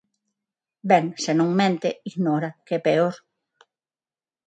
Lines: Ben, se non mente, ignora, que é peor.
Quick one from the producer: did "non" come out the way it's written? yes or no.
yes